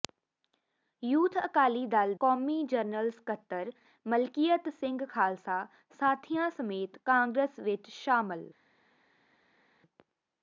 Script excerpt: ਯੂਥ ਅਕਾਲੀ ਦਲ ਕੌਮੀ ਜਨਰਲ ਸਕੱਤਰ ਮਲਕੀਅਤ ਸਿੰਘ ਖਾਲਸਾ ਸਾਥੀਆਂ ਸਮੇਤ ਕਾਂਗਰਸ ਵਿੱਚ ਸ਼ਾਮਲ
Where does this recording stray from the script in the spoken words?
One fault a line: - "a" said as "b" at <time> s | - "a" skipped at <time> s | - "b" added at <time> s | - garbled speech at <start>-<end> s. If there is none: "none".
none